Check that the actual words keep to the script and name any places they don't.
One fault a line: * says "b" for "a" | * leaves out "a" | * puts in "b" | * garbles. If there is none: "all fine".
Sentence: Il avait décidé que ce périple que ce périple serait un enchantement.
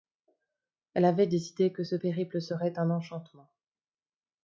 * says "Elle" for "Il"
* leaves out "que ce périple"